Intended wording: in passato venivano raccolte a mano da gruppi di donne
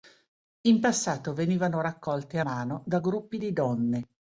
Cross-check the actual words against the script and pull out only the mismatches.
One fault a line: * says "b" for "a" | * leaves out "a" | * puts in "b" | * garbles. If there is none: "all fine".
all fine